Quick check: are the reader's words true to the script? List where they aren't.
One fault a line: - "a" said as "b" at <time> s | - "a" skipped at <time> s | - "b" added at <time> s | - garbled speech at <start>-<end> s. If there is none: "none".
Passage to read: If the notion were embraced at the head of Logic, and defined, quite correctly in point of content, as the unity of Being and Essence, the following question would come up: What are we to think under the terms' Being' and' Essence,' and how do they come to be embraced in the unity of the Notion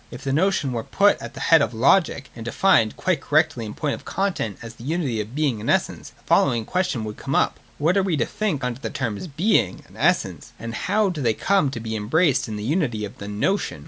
- "embraced" said as "put" at 0.8 s